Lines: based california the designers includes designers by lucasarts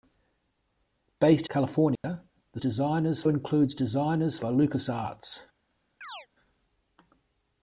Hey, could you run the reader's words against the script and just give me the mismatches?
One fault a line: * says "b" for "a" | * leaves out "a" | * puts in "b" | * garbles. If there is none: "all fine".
all fine